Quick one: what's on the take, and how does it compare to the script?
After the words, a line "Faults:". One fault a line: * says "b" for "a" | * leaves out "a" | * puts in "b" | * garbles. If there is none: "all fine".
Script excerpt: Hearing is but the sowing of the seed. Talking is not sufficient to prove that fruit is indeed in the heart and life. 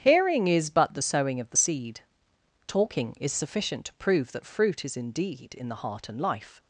Hearing is but the sowing of the seed. Talking is sufficient to prove that fruit is indeed in the heart and life.
Faults:
* leaves out "not"